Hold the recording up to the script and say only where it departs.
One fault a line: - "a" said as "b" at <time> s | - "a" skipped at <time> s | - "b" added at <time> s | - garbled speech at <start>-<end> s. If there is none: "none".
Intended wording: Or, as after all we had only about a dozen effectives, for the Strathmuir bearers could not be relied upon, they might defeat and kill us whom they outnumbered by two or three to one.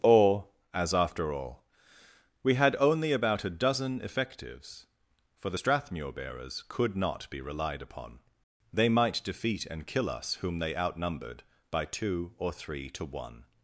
none